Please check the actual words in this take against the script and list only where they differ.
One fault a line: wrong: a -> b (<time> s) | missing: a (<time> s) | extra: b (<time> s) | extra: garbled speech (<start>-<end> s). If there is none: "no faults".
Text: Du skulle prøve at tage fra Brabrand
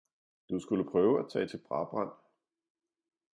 wrong: fra -> til (1.5 s)